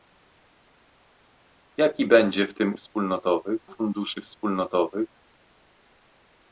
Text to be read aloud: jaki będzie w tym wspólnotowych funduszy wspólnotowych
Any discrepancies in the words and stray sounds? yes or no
no